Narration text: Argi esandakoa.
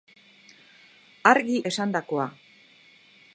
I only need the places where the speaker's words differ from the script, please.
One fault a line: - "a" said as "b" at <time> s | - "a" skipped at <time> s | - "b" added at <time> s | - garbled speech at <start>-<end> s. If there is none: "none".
none